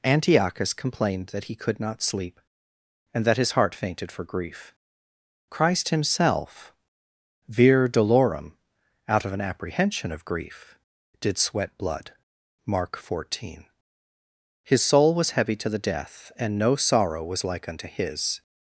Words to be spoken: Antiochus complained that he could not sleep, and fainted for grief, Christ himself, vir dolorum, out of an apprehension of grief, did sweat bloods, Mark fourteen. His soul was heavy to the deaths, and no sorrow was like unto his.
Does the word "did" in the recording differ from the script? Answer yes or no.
no